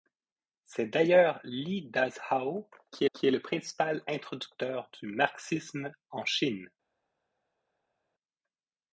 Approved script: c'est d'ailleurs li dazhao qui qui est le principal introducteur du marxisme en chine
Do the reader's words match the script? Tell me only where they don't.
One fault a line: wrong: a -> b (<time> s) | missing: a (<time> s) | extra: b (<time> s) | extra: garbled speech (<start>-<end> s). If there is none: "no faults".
no faults